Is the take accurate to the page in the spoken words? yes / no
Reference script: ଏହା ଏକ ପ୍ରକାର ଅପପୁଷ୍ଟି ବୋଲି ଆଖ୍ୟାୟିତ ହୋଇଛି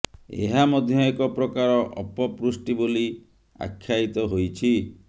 no